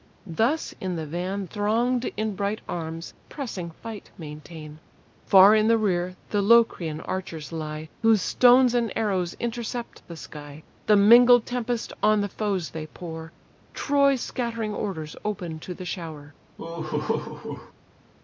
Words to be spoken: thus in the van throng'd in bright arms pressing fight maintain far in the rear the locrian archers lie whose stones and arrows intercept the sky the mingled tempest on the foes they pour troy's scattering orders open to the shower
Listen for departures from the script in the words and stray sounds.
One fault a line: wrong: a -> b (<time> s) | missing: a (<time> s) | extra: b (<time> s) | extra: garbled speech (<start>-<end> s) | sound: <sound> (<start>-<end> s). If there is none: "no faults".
sound: laugh (16.6-17.7 s)